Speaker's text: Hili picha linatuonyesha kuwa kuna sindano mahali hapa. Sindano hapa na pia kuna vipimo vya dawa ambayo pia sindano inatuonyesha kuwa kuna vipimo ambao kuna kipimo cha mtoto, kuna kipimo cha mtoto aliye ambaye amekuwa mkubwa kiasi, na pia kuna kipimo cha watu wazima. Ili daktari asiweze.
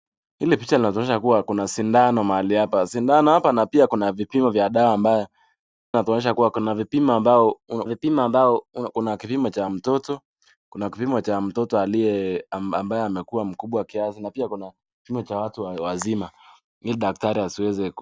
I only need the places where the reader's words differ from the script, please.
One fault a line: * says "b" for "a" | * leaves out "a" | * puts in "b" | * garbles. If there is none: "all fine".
* leaves out "pia sindano"
* puts in "vipimo ambao"